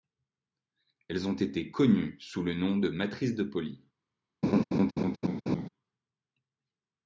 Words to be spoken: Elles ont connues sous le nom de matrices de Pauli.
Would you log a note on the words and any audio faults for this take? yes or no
yes